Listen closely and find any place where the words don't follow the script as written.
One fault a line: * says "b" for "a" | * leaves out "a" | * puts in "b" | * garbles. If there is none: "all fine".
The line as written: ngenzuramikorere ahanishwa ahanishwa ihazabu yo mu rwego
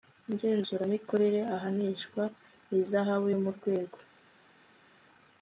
* leaves out "ahanishwa"